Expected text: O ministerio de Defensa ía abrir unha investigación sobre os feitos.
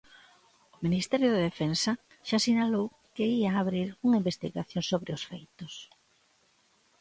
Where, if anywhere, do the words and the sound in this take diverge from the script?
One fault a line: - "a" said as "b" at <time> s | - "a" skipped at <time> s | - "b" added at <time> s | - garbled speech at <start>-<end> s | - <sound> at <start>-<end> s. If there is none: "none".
- "xa sinalou que" added at 2.3 s